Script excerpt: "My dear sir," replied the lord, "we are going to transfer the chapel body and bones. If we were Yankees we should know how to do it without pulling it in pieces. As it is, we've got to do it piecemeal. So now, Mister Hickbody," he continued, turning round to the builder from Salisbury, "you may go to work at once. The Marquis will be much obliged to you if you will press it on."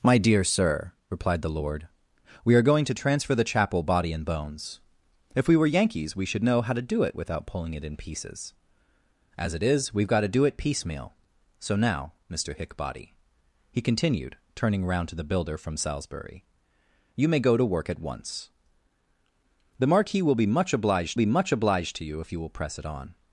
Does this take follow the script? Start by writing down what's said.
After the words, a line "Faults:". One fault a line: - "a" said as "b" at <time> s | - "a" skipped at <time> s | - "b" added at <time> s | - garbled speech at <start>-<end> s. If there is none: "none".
"My dear sir," replied the lord, "we are going to transfer the chapel body and bones. If we were Yankees we should know how to do it without pulling it in pieces. As it is, we've got to do it piecemeal. So now, Mister Hickbody," he continued, turning round to the builder from Salisbury, "you may go to work at once. The Marquis will be much obliged be much obliged to you if you will press it on."
Faults:
- "be much obliged" added at 21.1 s